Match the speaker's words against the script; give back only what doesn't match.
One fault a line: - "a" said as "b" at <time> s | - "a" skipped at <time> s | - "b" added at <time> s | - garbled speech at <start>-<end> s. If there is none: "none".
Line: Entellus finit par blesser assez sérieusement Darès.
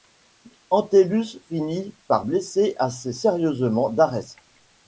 none